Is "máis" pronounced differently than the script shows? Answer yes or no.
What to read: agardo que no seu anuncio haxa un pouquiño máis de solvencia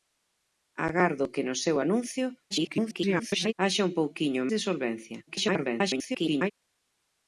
yes